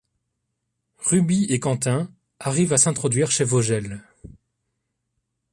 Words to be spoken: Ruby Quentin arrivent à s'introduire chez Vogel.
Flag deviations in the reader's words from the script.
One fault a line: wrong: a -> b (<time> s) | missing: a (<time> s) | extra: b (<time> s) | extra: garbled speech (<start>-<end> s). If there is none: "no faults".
extra: et (1.4 s)